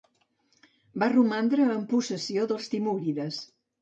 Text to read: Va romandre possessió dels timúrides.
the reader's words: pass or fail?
fail